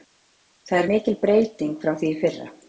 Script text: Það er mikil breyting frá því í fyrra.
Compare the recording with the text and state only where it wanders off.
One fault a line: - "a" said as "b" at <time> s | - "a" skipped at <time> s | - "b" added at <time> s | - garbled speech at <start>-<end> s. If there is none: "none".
none